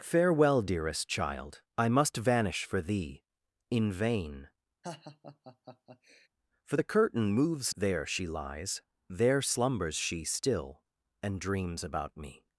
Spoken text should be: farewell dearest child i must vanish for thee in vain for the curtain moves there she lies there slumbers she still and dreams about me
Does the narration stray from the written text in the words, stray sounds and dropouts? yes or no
yes